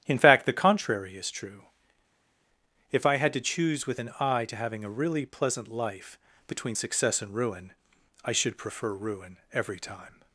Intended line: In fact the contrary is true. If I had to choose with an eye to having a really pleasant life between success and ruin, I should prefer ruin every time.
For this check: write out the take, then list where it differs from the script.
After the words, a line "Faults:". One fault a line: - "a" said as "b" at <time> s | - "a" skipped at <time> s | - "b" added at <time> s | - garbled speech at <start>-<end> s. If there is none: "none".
In fact the contrary is true. If I had to choose with an eye to having a really pleasant life between success and ruin, I should prefer ruin every time.
Faults:
none